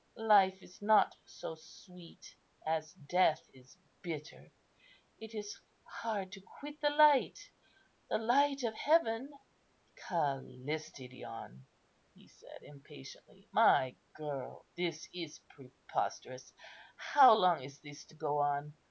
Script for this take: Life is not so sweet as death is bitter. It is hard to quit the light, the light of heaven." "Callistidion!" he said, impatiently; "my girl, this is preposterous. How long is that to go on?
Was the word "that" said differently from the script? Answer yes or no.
yes